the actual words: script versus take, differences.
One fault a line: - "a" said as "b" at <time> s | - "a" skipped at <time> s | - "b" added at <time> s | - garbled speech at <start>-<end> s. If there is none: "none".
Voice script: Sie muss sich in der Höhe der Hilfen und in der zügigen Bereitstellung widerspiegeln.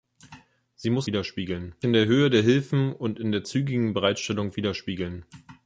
- "sich" said as "widerspiegeln" at 1.1 s